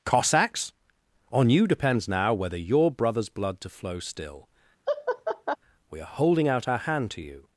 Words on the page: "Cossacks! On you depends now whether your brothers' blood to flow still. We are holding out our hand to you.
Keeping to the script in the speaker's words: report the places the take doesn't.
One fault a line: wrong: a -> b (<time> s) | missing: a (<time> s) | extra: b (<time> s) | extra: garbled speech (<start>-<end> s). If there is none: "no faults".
no faults